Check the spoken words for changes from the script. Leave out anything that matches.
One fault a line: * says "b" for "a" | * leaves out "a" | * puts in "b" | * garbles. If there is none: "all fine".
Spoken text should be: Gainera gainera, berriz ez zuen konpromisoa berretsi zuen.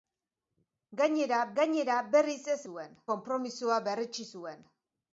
all fine